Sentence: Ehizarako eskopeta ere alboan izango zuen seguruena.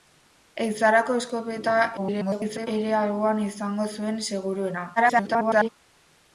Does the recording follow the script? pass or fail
fail